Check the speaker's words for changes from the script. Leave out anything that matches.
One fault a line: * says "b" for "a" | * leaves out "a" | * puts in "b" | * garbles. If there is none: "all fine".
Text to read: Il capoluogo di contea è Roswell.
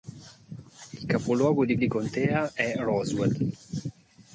* puts in "di"